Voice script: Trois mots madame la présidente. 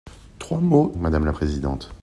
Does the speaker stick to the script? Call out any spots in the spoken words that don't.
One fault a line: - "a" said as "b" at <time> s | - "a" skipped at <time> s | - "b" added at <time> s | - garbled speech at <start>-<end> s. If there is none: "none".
none